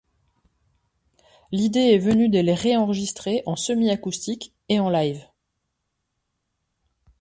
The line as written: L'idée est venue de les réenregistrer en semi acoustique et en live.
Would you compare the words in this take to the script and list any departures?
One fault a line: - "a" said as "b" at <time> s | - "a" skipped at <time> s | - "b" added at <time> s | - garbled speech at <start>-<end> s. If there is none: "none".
none